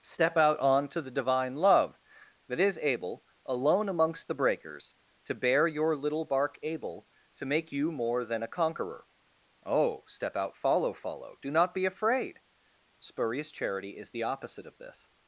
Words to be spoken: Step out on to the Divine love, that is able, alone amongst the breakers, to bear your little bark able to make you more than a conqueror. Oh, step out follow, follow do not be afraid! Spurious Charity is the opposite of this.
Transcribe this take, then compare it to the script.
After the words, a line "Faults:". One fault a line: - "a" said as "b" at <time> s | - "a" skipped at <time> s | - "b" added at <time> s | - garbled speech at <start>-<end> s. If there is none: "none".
Step out on to the Divine love, that is able, alone amongst the breakers, to bear your little bark able to make you more than a conqueror. Oh, step out follow, follow do not be afraid! Spurious Charity is the opposite of this.
Faults:
none